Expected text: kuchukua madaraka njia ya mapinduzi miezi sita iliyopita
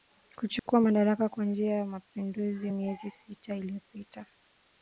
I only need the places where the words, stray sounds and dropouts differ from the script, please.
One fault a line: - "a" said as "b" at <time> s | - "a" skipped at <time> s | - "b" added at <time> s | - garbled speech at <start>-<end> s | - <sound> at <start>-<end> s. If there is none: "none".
- dropout at 0.6-0.7 s
- "kwa" added at 1.3 s